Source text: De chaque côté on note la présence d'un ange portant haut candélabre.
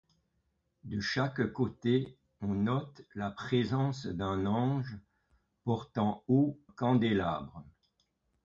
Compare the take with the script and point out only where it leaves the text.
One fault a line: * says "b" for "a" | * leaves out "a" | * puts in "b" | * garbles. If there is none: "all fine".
all fine